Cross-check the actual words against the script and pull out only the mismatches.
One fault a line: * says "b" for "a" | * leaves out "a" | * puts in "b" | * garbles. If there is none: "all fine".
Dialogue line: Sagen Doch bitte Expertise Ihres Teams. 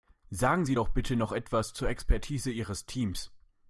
* puts in "Sie"
* puts in "noch etwas zur"